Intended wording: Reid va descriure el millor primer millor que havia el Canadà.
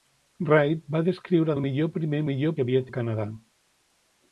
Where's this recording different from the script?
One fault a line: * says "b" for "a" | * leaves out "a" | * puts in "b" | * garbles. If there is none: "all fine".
all fine